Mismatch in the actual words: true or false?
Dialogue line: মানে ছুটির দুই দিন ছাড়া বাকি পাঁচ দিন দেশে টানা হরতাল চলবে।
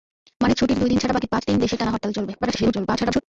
true